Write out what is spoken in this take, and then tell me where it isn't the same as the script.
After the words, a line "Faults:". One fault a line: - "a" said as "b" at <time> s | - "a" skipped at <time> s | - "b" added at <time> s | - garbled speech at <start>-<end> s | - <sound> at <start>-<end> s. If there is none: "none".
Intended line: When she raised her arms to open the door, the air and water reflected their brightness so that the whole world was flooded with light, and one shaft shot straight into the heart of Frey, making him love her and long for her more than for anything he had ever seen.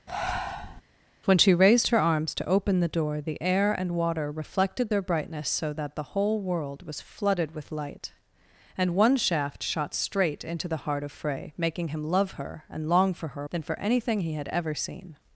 When she raised her arms to open the door, the air and water reflected their brightness so that the whole world was flooded with light, and one shaft shot straight into the heart of Frey, making him love her and long for her than for anything he had ever seen.
Faults:
- breath at 0.1-0.8 s
- "more" skipped at 13.5 s